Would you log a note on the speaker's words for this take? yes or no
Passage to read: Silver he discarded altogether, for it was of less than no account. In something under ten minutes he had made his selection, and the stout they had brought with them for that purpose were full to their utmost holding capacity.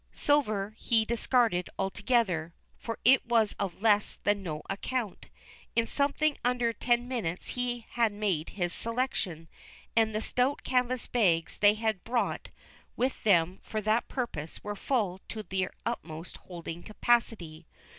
yes